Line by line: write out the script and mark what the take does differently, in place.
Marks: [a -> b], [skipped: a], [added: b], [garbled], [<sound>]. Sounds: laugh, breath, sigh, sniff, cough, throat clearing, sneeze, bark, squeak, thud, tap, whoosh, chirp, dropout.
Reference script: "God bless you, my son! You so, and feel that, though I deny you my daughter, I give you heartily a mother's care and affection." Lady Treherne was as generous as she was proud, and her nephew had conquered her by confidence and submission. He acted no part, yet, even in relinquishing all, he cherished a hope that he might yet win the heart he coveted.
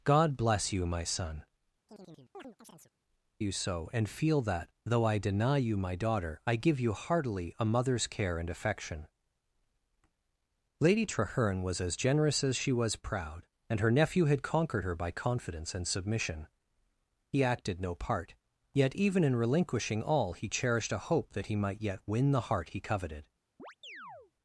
"God bless you, my son! [chirp] You so, and feel that, though I deny you my daughter, I give you heartily a mother's care and affection." Lady Treherne was as generous as she was proud, and her nephew had conquered her by confidence and submission. He acted no part, yet, even in relinquishing all, he cherished a hope that he might yet win the heart he coveted. [chirp]